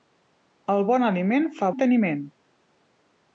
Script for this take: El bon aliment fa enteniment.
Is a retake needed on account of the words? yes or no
no